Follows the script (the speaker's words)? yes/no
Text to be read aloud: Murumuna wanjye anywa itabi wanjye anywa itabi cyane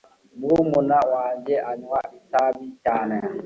no